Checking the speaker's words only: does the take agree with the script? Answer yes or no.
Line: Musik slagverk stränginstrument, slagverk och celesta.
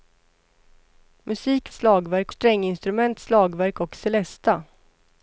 yes